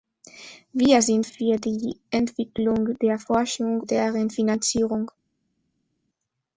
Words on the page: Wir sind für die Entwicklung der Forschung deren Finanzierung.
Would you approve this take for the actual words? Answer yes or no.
yes